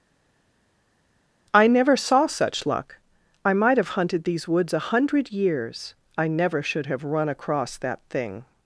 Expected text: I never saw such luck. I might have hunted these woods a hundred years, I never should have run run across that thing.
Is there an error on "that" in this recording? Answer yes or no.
no